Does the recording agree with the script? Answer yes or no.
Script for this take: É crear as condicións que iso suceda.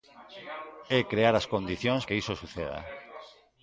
yes